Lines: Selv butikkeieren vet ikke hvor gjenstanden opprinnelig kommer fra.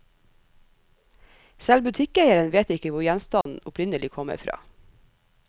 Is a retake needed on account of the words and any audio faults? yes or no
yes